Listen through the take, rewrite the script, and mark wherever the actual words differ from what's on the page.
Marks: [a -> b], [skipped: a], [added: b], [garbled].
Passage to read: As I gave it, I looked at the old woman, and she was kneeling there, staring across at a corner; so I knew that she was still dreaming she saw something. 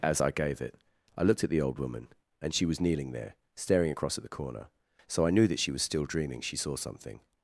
As I gave it, I looked at the old woman, and she was kneeling there, staring across at [a -> the] corner; so I knew that she was still dreaming she saw something.